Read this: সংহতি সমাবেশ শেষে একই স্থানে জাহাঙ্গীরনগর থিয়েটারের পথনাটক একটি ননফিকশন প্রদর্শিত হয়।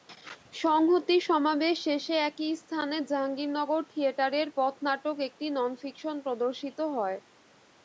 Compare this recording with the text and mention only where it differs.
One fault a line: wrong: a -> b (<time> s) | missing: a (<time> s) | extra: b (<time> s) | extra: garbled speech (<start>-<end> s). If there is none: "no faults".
no faults